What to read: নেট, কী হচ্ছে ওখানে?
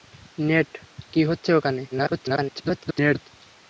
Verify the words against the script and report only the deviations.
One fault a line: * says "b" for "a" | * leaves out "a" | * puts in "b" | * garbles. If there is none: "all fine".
* garbles